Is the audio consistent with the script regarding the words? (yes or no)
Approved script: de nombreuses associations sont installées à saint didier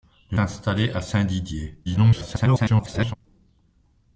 no